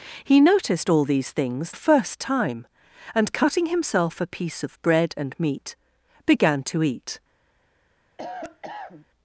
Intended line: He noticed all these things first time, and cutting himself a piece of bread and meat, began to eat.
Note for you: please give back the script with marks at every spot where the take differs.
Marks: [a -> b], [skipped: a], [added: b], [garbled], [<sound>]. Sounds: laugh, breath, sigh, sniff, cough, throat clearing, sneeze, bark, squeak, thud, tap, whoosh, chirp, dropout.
He noticed all these things first time, and cutting himself a piece of bread and meat, began to eat. [cough]